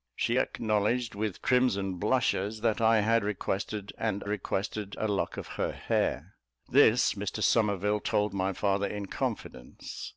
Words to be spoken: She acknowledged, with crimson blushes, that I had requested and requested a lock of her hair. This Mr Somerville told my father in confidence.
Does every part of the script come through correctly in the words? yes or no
yes